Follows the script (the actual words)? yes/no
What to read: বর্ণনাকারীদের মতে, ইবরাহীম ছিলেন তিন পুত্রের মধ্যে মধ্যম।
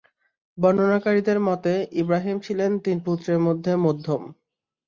yes